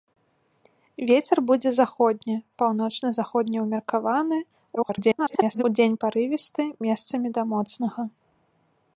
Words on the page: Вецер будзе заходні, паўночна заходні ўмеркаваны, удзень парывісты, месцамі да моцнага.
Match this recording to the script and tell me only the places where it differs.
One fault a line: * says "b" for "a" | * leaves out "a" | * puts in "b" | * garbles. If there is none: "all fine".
* garbles